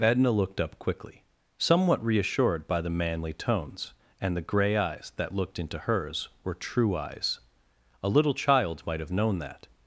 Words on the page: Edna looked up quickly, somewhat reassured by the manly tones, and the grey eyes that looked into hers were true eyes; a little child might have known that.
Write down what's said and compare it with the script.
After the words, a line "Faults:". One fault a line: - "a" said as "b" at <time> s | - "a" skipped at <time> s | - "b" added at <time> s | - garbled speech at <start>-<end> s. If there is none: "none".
Edna looked up quickly, somewhat reassured by the manly tones, and the grey eyes that looked into hers were true eyes; a little child might have known that.
Faults:
none